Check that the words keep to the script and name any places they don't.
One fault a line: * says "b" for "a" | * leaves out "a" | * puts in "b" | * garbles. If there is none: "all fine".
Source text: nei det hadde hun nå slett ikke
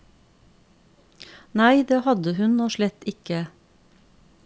all fine